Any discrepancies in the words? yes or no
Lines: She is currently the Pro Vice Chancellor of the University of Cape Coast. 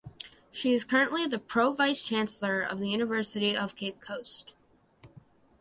no